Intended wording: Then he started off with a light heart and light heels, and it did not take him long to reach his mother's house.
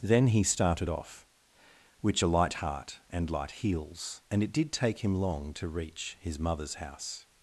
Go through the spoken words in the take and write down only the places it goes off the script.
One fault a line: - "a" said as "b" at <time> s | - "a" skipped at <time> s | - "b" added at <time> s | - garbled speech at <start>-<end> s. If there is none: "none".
- "with" said as "which" at 2.0 s
- "not" skipped at 4.7 s